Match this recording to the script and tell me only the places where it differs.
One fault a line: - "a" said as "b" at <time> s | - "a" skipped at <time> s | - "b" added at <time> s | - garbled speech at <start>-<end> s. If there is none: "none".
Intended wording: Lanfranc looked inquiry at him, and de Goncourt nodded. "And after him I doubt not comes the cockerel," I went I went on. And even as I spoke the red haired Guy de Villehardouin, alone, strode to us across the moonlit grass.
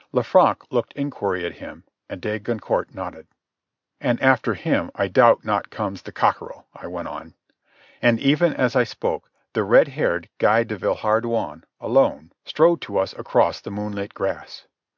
- "I went" skipped at 7.1 s